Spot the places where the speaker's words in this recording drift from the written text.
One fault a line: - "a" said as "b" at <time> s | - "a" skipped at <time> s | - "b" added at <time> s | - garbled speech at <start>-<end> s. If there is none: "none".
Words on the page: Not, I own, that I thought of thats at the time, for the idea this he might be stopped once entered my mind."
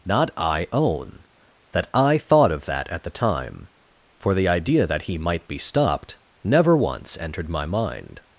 - "thats" said as "that" at 2.7 s
- "this" said as "that" at 4.9 s
- "never" added at 6.4 s